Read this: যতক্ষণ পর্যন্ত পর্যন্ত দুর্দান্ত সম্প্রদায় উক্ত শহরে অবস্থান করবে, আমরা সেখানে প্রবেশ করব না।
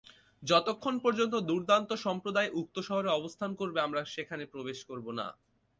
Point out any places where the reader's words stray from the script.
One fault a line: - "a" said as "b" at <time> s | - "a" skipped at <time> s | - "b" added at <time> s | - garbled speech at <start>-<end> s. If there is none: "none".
- "পর্যন্ত" skipped at 1.3 s